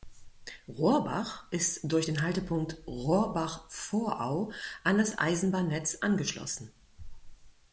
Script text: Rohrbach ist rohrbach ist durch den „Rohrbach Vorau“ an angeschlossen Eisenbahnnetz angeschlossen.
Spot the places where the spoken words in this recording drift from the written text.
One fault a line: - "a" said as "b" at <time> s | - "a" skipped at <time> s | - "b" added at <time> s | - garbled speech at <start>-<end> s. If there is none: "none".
- "rohrbach ist" skipped at 1.8 s
- "Haltepunkt" added at 2.2 s
- "angeschlossen" said as "das" at 5.0 s